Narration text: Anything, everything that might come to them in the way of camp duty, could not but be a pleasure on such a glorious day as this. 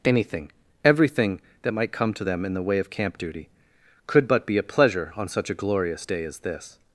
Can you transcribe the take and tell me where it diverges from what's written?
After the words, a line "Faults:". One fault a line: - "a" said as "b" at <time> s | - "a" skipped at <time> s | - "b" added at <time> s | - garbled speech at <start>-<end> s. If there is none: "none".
Anything, everything that might come to them in the way of camp duty, could but be a pleasure on such a glorious day as this.
Faults:
- "not" skipped at 4.3 s